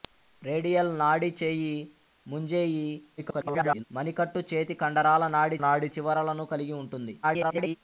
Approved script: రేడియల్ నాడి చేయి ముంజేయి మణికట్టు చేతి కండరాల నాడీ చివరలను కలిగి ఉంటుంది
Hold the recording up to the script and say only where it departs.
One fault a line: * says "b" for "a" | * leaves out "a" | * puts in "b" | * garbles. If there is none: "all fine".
* garbles
* puts in "నాడీ"
* garbles